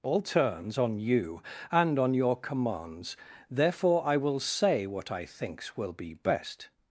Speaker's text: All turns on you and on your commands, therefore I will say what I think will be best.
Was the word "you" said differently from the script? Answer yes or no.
no